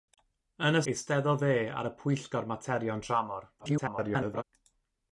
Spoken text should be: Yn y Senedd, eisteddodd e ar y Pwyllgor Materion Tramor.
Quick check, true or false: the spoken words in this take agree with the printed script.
false